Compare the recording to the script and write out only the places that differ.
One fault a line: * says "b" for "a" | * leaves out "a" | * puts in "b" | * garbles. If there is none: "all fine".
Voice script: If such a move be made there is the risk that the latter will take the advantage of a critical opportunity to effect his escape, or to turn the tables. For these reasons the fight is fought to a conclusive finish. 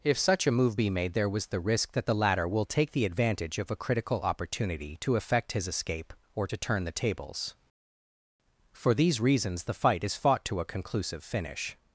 * says "was" for "is"